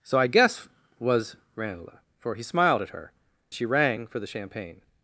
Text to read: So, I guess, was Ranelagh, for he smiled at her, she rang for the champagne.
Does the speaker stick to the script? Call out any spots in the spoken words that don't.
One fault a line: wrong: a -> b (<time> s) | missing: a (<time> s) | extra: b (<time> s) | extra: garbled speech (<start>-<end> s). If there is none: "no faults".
no faults